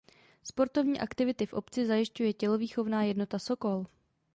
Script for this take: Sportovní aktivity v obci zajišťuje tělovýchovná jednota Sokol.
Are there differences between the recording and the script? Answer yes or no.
no